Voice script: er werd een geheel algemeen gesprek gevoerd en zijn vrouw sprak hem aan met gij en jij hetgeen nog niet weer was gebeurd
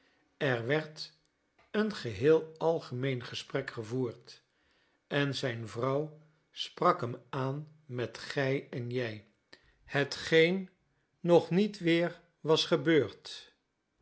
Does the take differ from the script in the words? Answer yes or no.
no